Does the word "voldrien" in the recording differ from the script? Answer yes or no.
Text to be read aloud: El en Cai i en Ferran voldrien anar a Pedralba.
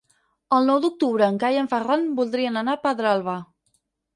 no